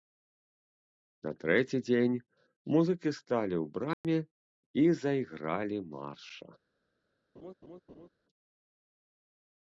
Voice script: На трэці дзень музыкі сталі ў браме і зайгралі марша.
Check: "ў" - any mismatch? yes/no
no